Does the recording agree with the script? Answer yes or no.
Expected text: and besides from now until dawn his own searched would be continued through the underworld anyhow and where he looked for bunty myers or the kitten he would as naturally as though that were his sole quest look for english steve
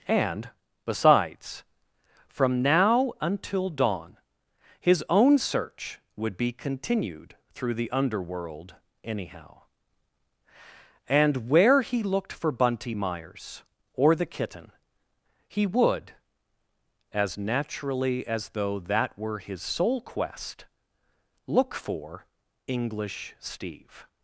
no